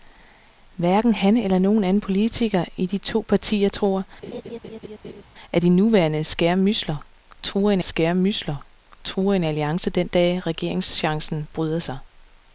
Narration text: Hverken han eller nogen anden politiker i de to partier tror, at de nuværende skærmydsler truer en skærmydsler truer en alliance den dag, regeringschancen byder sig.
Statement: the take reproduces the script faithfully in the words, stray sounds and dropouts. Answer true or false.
false